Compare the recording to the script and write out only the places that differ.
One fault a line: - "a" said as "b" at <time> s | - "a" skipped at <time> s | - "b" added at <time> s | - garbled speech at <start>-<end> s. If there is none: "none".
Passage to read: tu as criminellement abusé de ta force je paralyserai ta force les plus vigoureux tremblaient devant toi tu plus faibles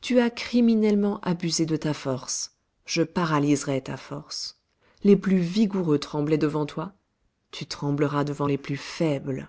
- "trembleras devant les" added at 7.7 s